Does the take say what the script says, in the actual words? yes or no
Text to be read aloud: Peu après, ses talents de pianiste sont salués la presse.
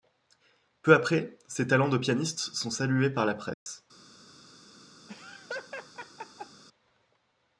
no